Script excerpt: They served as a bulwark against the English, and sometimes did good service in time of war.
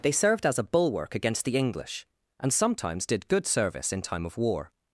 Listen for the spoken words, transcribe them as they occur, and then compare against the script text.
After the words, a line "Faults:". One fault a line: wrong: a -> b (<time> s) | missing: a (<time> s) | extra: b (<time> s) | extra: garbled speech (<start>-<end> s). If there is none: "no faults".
They served as a bulwark against the English, and sometimes did good service in time of war.
Faults:
no faults